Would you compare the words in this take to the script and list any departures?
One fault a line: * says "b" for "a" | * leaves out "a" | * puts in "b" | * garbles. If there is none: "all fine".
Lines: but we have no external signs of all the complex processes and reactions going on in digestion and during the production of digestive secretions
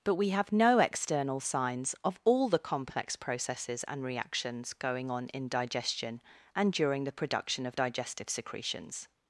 all fine